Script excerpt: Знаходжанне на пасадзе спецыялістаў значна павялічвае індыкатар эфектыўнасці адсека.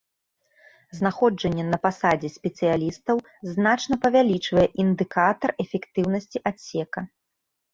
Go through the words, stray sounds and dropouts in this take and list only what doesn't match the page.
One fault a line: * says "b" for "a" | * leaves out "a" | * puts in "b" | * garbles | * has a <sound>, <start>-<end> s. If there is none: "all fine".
all fine